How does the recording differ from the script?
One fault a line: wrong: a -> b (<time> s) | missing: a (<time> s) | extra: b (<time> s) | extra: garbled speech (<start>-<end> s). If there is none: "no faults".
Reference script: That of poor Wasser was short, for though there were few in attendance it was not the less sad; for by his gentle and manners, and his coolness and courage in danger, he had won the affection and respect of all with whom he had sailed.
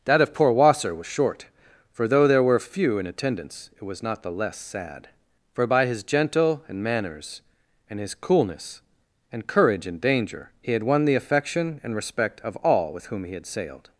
no faults